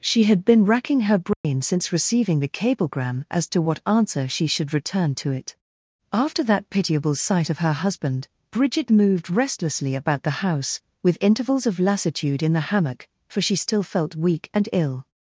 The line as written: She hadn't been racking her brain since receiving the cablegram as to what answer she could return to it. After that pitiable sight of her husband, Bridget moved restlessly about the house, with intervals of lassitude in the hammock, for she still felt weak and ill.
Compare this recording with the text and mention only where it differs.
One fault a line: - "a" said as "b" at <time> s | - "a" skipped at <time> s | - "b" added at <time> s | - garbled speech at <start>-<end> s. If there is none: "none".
- "hadn't" said as "had" at 0.2 s
- "could" said as "should" at 4.5 s